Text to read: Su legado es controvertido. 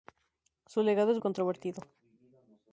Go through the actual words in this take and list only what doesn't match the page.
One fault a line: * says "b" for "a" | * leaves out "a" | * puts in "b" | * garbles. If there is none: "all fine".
all fine